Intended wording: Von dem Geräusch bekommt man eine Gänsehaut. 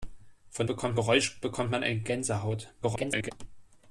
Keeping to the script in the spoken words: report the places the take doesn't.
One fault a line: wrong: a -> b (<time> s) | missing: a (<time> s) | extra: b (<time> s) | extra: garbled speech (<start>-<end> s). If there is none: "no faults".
wrong: dem -> bekommt (0.7 s)
extra: garbled speech (2.8-3.3 s)